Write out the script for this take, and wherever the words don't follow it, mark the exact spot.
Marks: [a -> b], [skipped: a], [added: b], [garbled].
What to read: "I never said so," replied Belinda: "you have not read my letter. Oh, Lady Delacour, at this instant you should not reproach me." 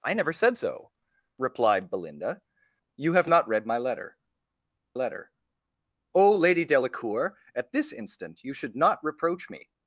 "I never said so," replied Belinda: "you have not read my letter. [added: letter] Oh, Lady Delacour, at this instant you should not reproach me."